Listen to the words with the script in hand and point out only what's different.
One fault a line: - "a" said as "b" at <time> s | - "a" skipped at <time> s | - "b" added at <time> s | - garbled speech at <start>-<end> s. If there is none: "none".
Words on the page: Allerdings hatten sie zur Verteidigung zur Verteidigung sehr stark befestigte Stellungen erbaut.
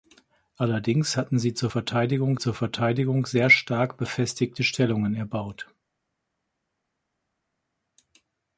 none